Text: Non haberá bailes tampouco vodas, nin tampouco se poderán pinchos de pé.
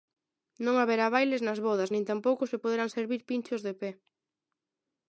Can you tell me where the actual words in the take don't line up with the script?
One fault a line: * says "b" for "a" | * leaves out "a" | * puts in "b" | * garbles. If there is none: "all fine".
* says "nas" for "tampouco"
* puts in "servir"